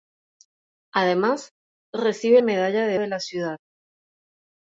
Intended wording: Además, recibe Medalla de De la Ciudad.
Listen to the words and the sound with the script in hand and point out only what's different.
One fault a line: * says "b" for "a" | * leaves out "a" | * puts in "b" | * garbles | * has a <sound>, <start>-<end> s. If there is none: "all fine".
all fine